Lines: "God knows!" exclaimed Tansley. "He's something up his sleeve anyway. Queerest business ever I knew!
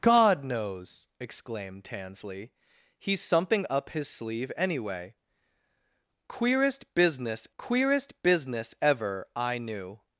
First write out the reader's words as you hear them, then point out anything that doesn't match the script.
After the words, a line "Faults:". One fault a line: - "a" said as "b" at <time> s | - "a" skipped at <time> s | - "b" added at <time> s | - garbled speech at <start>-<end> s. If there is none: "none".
"God knows!" exclaimed Tansley. "He's something up his sleeve anyway. Queerest business queerest business ever I knew!
Faults:
- "queerest business" added at 7.6 s